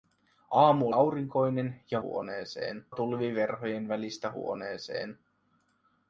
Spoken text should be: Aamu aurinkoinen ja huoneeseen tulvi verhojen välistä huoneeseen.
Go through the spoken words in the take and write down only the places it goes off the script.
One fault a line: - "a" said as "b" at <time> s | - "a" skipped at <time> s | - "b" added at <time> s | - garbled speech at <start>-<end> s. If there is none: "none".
none